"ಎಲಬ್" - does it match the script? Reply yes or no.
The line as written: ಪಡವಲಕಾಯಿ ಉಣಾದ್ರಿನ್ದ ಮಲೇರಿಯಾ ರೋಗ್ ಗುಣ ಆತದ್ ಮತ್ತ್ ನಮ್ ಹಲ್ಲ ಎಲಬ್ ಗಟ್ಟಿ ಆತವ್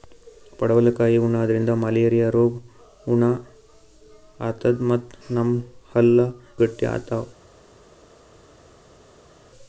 no